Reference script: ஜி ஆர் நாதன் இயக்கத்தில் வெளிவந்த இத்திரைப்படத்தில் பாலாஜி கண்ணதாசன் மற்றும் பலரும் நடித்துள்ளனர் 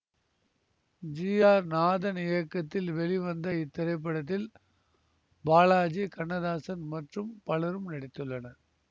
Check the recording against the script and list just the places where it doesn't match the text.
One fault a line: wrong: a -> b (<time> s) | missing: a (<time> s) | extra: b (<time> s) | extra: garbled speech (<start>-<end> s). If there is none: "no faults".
no faults